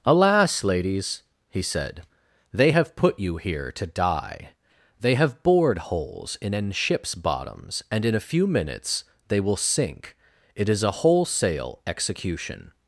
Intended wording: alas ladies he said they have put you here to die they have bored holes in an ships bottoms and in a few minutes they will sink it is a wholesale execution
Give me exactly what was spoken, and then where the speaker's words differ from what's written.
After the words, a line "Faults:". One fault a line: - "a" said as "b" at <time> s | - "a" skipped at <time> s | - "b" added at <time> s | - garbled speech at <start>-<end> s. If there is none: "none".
alas ladies he said they have put you here to die they have bored holes in an ships bottoms and in a few minutes they will sink it is a wholesale execution
Faults:
none